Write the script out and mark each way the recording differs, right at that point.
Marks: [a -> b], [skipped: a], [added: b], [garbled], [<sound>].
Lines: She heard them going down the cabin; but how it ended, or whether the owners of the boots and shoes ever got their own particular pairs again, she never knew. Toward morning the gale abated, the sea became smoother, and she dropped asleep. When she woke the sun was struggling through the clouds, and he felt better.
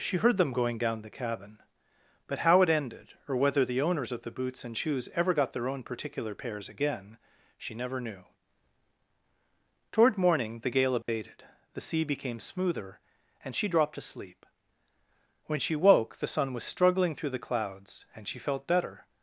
She heard them going down the cabin; but how it ended, or whether the owners of the boots and shoes ever got their own particular pairs again, she never knew. Toward morning the gale abated, [dropout] the sea became smoother, and she dropped asleep. When she woke the sun was struggling through the clouds, and [he -> she] felt better.